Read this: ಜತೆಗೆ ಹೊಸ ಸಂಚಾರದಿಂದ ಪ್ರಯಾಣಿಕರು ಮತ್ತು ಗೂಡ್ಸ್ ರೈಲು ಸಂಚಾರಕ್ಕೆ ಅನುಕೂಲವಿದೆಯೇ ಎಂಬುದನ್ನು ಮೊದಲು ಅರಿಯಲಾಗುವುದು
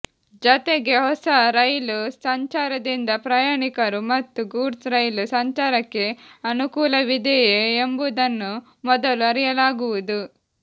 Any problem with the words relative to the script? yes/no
yes